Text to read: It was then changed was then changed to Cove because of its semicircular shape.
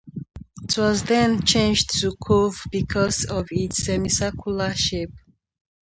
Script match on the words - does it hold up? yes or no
no